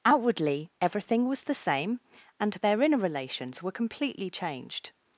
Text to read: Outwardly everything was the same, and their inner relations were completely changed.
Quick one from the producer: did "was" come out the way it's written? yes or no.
yes